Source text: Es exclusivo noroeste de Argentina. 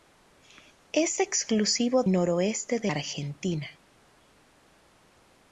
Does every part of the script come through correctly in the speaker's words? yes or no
yes